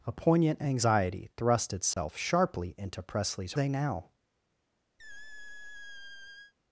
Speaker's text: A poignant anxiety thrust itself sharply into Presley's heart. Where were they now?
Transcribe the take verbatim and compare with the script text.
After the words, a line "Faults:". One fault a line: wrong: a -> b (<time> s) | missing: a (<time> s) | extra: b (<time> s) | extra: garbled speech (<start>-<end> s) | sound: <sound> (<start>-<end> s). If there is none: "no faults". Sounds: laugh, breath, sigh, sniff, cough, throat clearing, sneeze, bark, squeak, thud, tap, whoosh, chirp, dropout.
A poignant anxiety thrust itself sharply into Presley's they now?
Faults:
sound: dropout (1.9-2.0 s)
missing: heart Where were (3.5 s)
sound: squeak (5.0-6.5 s)